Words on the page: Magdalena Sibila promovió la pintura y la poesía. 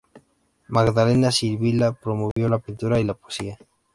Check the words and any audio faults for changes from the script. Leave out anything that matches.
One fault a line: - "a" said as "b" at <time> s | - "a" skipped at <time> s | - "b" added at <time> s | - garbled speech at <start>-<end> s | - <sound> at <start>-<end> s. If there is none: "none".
- dropout at 2.3-2.4 s